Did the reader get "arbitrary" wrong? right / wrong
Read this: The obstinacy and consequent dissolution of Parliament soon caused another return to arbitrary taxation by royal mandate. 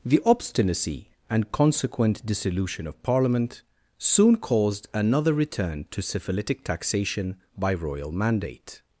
wrong